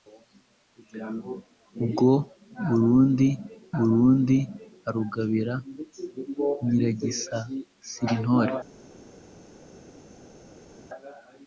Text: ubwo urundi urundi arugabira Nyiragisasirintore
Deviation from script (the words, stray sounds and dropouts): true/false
false